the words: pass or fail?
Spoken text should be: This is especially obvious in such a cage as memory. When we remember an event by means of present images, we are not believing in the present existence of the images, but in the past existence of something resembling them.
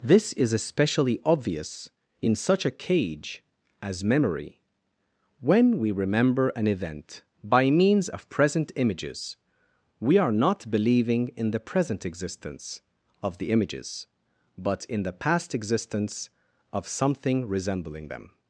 pass